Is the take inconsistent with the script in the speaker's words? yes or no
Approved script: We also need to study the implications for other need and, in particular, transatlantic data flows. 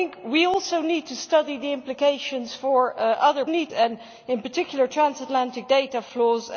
no